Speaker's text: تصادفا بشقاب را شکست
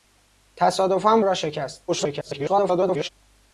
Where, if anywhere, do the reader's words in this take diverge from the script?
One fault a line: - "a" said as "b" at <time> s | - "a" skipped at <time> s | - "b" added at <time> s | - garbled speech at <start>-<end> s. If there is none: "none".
- "بشقاب" skipped at 1.2 s
- garbled speech at 1.9-3.1 s